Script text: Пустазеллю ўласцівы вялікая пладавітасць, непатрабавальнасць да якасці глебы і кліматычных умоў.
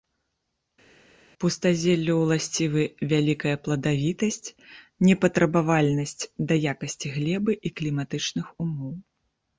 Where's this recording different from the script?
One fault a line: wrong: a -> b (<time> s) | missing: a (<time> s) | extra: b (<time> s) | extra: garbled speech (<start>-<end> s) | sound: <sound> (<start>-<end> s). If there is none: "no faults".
no faults